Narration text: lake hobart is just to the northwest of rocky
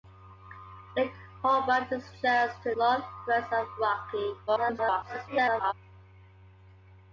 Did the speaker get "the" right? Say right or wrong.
wrong